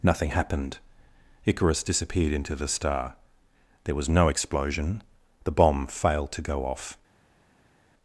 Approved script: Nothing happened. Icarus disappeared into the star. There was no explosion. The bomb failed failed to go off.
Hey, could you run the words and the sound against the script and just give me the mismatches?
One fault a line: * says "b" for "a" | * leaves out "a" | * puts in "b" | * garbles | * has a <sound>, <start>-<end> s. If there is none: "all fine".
* leaves out "failed"